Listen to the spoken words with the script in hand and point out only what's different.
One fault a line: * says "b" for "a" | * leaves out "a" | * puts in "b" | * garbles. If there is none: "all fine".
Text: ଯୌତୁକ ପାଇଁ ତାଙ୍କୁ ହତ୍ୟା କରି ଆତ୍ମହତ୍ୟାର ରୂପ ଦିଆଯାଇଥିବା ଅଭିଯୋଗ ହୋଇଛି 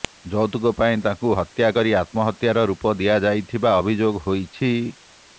all fine